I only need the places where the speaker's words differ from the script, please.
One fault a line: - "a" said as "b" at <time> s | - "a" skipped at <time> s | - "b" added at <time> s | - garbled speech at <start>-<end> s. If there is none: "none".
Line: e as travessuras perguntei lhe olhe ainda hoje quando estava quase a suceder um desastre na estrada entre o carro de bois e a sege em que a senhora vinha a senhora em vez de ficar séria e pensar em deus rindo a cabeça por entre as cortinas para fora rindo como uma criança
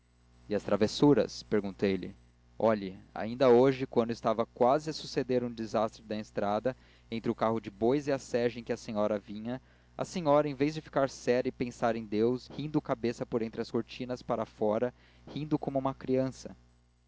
none